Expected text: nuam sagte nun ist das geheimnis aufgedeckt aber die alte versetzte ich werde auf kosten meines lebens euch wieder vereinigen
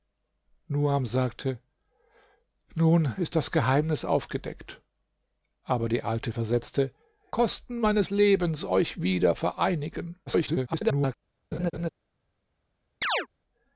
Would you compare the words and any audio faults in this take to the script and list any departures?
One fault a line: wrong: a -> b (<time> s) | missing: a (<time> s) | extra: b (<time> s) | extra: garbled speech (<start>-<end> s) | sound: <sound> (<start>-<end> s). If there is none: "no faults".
missing: ich werde auf (6.9 s)
extra: garbled speech (10.3-11.1 s)
sound: laugh (11.5-11.9 s)
sound: chirp (13.0-13.3 s)